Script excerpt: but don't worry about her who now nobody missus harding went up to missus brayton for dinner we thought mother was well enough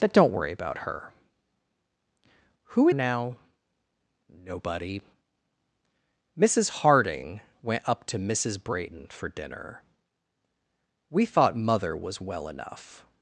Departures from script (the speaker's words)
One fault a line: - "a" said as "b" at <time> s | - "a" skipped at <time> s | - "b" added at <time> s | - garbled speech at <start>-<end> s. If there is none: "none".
none